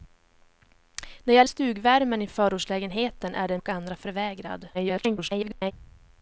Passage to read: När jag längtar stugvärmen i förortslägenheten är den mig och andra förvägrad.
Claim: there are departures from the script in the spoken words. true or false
true